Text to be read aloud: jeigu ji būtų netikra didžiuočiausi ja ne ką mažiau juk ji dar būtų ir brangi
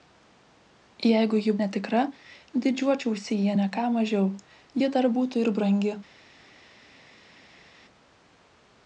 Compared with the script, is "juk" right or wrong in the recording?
wrong